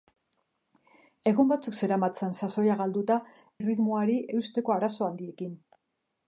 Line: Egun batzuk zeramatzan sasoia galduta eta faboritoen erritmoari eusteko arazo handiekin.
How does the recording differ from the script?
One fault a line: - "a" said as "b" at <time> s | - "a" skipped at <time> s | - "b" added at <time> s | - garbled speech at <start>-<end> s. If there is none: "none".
- "eta faboritoen" skipped at 3.2 s